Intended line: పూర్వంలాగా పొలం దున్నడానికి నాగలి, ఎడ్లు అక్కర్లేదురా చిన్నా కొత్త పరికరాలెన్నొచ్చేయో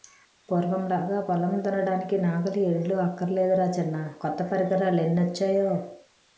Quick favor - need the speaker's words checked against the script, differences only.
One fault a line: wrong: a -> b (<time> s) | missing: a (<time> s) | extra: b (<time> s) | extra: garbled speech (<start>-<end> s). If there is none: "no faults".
no faults